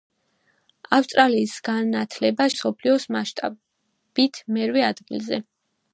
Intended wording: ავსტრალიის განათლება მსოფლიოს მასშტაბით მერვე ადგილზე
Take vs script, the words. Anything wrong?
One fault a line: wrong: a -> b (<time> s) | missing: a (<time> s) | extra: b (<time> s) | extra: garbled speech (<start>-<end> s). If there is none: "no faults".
no faults